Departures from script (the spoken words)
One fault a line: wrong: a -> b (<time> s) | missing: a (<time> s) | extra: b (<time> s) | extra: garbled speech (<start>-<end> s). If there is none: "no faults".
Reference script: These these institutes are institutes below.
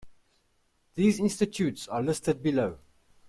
missing: these (1.2 s)
wrong: institutes -> listed (2.0 s)